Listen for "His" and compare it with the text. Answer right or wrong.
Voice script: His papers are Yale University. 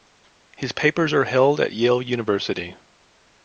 right